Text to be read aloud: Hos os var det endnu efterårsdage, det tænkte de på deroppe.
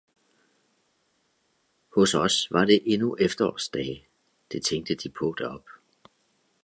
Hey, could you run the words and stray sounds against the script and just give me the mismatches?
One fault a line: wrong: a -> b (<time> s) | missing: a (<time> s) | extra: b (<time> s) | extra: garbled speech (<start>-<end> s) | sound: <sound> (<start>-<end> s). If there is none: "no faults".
no faults